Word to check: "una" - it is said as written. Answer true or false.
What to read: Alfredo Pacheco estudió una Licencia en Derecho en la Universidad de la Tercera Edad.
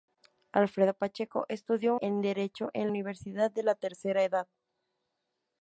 false